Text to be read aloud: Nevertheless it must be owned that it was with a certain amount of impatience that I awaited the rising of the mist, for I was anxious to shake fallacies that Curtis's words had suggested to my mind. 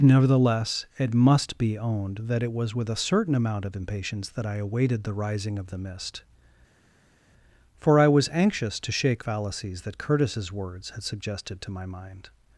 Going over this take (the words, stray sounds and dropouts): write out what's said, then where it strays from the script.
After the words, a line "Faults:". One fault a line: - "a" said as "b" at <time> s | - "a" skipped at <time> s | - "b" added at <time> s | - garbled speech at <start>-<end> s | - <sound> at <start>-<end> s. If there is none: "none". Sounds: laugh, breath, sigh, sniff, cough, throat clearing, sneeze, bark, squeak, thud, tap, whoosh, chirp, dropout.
Nevertheless it must be owned that it was with a certain amount of impatience that I awaited the rising of the mist, for I was anxious to shake fallacies that Curtis's words had suggested to my mind.
Faults:
none